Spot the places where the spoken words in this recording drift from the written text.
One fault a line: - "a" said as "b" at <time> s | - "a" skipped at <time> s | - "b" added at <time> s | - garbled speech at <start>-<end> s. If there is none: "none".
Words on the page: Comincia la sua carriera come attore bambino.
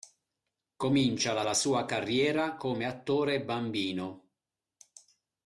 - "la" added at 1.4 s